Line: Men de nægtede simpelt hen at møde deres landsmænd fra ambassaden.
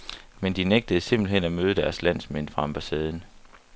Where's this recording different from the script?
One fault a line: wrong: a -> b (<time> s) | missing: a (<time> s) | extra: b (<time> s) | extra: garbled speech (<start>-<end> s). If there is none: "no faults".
no faults